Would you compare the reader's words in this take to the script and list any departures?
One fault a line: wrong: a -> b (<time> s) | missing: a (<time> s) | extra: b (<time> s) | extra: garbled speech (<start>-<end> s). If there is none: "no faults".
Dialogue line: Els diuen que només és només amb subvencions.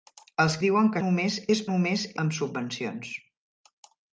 no faults